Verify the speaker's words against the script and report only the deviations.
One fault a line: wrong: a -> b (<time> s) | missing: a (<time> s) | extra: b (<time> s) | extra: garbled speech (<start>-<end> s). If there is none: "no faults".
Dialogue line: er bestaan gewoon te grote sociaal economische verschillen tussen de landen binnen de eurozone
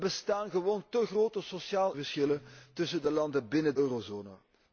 missing: economische (2.0 s)
missing: de (3.7 s)